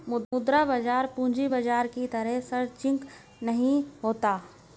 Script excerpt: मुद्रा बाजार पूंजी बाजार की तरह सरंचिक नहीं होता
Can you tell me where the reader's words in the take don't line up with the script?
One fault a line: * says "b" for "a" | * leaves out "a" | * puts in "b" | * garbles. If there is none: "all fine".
all fine